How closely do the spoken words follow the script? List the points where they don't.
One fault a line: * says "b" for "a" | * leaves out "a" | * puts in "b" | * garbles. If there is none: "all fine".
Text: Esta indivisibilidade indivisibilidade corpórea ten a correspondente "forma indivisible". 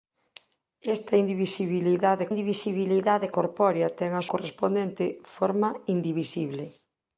all fine